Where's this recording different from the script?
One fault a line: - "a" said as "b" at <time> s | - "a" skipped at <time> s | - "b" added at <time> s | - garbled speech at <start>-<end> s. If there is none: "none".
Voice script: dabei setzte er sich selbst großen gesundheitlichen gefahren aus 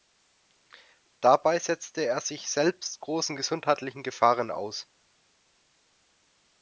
none